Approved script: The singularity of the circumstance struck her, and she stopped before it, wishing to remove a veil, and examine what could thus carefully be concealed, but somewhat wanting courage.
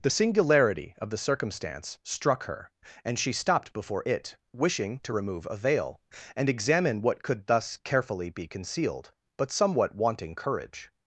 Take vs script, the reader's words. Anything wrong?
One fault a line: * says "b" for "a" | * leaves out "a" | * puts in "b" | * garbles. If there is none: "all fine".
all fine